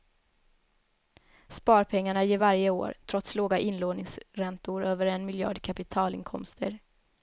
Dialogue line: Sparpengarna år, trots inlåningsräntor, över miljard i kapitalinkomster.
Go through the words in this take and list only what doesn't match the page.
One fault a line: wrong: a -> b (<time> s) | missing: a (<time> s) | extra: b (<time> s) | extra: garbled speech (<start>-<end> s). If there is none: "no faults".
extra: ger varje (2.2 s)
extra: låga (3.3 s)
extra: en (5.0 s)